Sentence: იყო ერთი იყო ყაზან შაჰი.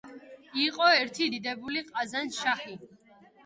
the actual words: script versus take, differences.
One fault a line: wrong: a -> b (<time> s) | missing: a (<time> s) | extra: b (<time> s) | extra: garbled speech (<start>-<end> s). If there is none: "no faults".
wrong: იყო -> დიდებული (1.3 s)